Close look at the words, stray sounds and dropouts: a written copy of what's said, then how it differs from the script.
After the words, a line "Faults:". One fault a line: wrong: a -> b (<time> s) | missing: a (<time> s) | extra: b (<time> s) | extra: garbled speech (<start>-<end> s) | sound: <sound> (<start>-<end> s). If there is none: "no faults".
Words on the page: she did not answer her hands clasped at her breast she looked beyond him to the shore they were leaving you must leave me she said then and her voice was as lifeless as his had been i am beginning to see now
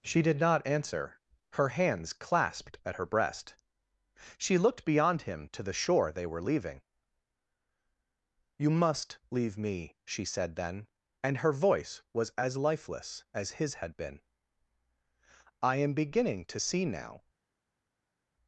she did not answer her hands clasped at her breast she looked beyond him to the shore they were leaving you must leave me she said then and her voice was as lifeless as his had been i am beginning to see now
Faults:
no faults